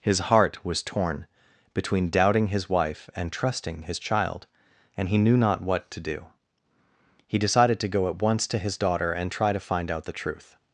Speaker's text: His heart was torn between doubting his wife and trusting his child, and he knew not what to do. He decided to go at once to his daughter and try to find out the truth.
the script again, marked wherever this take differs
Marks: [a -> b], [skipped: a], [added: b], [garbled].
His heart was torn between doubting his wife and trusting his child, and he knew not what to do. He decided to go at once to his daughter and try to find out the truth.